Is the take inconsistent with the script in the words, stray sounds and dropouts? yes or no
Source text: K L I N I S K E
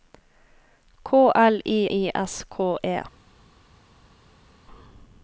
yes